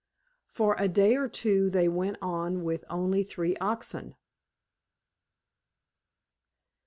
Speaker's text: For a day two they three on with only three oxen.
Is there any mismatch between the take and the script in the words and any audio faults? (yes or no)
yes